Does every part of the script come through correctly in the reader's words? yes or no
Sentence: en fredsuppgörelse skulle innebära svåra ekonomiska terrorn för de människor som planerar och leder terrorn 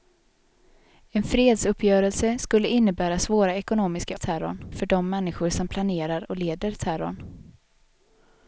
yes